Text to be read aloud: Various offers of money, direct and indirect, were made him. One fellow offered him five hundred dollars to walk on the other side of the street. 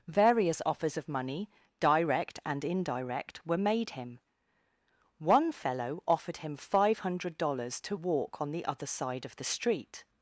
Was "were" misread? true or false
false